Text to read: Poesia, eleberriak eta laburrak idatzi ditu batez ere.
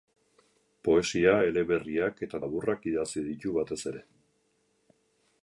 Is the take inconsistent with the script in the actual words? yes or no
no